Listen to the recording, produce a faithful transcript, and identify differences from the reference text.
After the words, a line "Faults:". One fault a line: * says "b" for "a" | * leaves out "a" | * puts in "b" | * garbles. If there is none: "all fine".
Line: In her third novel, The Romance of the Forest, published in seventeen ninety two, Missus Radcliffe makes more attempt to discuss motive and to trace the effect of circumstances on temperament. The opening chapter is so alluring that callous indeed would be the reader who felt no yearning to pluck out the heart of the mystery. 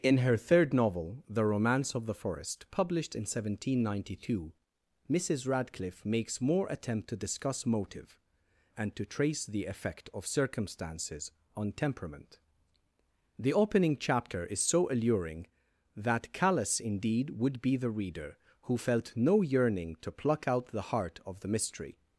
In her third novel, The Romance of the Forest, published in seventeen ninety two, Missus Radcliffe makes more attempt to discuss motive and to trace the effect of circumstances on temperament. The opening chapter is so alluring that callous indeed would be the reader who felt no yearning to pluck out the heart of the mystery.
Faults:
all fine